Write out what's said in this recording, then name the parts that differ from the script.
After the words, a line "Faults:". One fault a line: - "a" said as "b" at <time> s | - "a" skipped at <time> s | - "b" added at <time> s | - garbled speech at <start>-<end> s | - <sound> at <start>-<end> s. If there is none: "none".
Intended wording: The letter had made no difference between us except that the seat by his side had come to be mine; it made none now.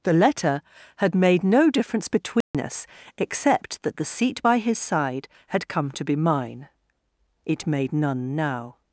The letter had made no difference between us except that the seat by his side had come to be mine; it made none now.
Faults:
- dropout at 2.4-2.5 s